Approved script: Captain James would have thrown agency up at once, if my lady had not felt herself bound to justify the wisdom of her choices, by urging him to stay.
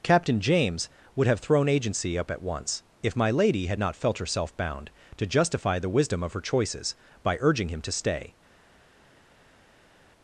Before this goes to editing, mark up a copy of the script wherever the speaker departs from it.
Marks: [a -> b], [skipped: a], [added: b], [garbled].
Captain James would have thrown agency up at once, if my lady had not felt herself bound to justify the wisdom of her choices, by urging him to stay.